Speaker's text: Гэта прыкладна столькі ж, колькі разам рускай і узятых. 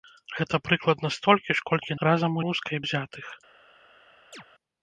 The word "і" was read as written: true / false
true